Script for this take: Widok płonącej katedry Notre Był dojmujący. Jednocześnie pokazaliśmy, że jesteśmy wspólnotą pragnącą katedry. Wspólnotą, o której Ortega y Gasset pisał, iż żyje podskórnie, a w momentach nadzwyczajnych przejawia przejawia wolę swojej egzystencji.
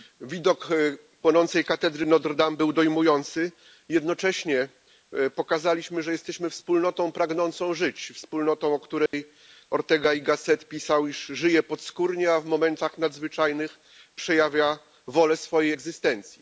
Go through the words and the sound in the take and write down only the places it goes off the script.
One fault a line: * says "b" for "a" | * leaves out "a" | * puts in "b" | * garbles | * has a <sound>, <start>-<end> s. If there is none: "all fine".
* puts in "Dame"
* says "żyć" for "katedry"
* has a dropout, 9.1-9.1 s
* leaves out "przejawia"